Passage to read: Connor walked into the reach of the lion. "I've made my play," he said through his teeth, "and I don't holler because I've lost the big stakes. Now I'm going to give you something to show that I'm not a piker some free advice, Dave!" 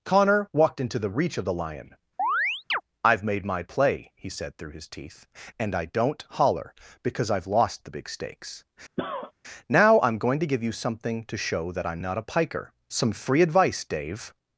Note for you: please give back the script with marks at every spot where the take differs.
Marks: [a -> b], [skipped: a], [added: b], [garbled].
Connor walked into the reach of the lion. "I've made my play," he said through his teeth, "and I don't holler because I've lost the big stakes. Now I'm going to give you something to show that I'm not a piker some free advice, Dave!"